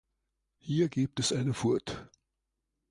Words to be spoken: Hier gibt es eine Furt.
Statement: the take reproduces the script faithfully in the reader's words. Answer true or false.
true